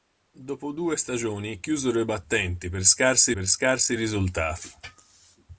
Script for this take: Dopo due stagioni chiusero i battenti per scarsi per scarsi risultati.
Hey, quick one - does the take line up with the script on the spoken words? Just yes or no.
yes